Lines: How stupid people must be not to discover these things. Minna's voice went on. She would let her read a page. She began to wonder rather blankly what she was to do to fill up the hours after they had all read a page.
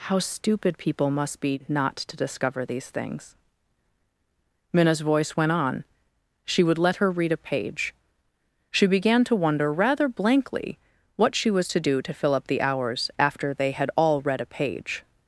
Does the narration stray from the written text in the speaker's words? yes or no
no